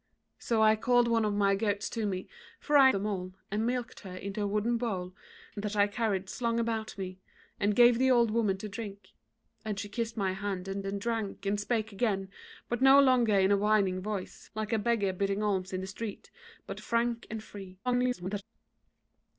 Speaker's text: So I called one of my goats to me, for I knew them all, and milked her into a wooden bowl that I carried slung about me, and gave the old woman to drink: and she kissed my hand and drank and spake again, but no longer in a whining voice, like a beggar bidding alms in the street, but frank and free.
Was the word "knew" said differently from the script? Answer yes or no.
yes